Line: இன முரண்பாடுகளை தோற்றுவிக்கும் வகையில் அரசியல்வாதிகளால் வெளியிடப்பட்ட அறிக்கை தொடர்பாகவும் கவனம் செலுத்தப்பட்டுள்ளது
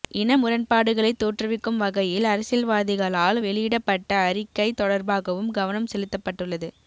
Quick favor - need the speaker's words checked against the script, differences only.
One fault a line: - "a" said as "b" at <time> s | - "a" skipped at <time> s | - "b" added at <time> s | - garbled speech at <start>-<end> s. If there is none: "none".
none